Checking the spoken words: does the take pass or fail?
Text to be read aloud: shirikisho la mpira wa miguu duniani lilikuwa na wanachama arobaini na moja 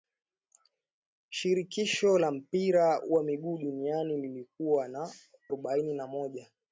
fail